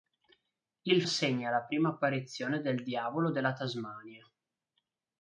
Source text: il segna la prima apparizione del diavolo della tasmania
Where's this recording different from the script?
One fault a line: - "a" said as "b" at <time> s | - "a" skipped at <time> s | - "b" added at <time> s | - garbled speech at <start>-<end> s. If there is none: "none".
none